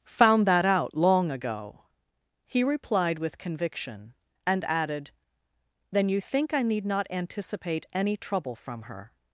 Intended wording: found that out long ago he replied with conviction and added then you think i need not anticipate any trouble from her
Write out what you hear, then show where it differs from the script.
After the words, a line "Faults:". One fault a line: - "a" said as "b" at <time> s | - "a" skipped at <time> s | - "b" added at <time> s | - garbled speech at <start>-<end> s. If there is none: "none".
found that out long ago he replied with conviction and added then you think i need not anticipate any trouble from her
Faults:
none